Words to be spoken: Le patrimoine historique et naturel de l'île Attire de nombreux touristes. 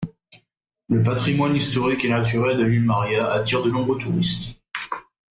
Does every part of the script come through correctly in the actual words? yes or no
no